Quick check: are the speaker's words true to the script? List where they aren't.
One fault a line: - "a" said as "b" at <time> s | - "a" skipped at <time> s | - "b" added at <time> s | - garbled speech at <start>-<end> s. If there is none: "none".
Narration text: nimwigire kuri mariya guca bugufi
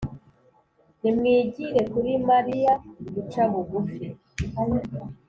none